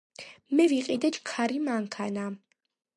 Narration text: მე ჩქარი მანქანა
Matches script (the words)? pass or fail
fail